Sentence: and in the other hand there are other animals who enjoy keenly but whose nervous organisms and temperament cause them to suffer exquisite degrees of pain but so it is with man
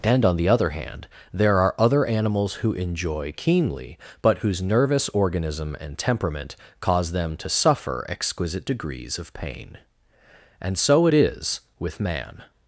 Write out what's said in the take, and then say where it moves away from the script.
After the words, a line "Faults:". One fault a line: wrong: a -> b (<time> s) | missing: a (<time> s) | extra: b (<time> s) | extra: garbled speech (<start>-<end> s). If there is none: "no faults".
and on the other hand there are other animals who enjoy keenly but whose nervous organism and temperament cause them to suffer exquisite degrees of pain and so it is with man
Faults:
wrong: in -> on (0.2 s)
wrong: organisms -> organism (5.1 s)
wrong: but -> and (10.6 s)